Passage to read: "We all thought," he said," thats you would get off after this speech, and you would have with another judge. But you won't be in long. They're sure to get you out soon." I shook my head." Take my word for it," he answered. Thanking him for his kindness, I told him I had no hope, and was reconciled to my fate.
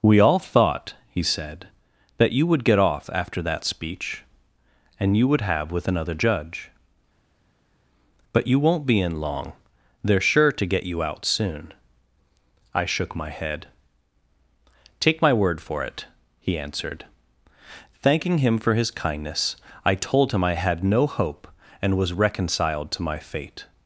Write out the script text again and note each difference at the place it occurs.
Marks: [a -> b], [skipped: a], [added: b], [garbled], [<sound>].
"We all thought," he said," [thats -> that] you would get off after [this -> that] speech, and you would have with another judge. But you won't be in long. They're sure to get you out soon." I shook my head." Take my word for it," he answered. Thanking him for his kindness, I told him I had no hope, and was reconciled to my fate.